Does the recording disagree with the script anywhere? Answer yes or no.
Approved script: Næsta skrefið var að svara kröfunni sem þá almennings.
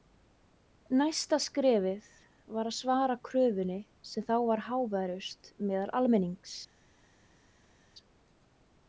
yes